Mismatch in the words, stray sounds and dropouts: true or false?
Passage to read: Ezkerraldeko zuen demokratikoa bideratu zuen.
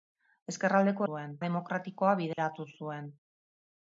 true